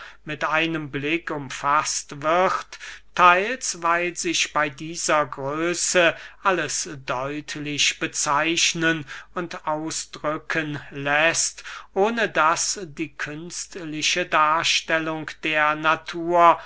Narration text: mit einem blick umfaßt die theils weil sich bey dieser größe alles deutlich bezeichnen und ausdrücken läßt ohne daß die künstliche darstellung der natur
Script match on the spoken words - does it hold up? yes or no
no